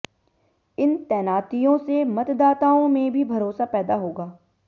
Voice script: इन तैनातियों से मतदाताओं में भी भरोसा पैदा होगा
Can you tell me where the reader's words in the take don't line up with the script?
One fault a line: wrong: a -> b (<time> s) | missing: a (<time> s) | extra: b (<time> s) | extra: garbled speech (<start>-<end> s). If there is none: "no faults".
no faults